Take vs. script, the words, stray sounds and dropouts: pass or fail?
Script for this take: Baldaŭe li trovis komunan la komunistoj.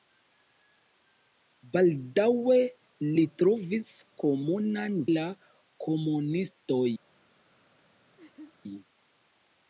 fail